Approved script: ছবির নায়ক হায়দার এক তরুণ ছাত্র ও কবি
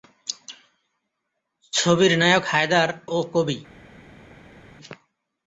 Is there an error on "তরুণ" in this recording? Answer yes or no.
yes